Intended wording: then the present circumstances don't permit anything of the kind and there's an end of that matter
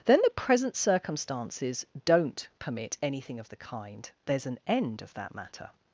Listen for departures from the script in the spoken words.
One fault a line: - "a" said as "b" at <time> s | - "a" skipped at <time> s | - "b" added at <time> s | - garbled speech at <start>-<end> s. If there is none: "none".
- "and" skipped at 4.1 s